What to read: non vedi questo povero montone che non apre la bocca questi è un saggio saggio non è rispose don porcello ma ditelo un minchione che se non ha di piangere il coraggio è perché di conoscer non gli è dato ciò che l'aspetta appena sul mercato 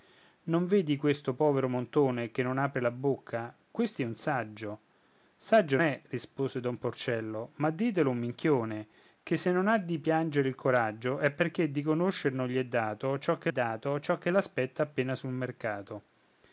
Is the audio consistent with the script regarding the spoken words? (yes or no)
no